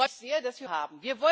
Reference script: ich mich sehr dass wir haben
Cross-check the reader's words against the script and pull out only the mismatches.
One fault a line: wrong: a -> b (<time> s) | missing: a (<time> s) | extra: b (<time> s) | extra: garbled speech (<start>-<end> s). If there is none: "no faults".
no faults